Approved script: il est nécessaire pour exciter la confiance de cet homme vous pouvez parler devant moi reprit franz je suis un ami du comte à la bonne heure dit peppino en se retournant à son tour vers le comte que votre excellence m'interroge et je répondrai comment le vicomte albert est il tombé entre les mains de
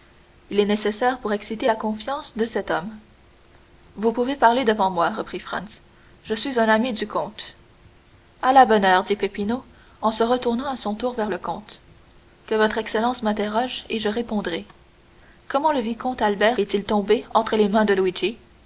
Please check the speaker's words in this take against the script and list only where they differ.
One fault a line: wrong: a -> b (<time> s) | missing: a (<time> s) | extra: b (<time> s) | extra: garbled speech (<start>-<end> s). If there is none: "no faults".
no faults